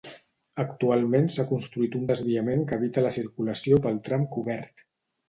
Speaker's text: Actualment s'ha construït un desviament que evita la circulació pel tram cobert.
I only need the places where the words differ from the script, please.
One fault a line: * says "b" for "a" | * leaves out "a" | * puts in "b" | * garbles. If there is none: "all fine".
all fine